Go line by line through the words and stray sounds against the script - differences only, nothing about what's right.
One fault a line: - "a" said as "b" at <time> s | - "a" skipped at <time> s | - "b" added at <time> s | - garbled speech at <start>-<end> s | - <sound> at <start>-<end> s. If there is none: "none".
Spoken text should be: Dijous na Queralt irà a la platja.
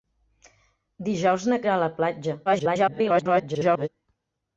- "Queralt" skipped at 1.6 s
- garbled speech at 2.5-3.9 s